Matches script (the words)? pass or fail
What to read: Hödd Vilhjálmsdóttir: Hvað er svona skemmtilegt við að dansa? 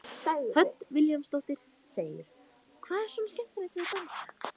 pass